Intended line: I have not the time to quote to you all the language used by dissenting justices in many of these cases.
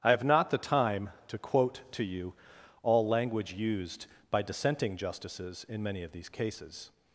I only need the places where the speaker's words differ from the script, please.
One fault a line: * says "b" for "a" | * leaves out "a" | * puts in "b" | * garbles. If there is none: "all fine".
* leaves out "the"